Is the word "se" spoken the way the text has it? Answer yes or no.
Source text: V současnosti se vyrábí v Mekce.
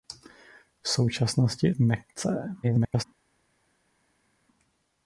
no